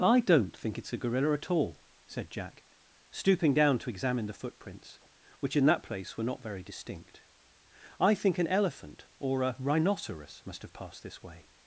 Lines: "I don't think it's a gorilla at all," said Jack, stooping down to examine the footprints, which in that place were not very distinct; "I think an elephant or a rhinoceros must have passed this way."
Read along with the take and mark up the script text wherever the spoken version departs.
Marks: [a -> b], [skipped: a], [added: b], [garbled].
"I don't think it's a gorilla at all," said Jack, stooping down to examine the footprints, which in that place were not very distinct; "I think an elephant or a rhinoceros must have passed this way."